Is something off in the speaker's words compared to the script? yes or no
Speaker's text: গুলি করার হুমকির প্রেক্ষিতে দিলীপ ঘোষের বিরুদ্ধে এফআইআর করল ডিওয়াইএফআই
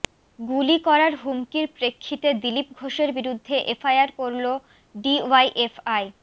no